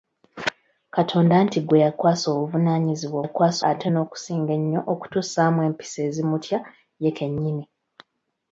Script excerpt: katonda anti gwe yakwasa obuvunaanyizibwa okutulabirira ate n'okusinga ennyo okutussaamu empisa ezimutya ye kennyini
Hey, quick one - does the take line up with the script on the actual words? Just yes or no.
no